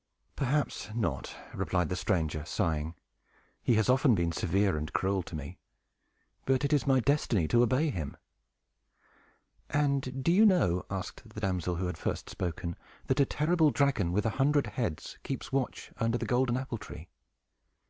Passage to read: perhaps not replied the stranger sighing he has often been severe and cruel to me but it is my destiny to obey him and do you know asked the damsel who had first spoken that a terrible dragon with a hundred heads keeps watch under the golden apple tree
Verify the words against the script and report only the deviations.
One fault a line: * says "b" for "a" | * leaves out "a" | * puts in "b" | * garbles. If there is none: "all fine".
all fine